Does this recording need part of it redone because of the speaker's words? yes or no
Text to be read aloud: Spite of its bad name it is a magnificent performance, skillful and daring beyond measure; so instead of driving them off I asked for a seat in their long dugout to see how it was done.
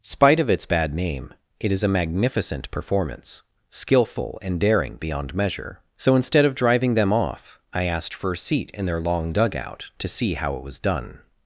no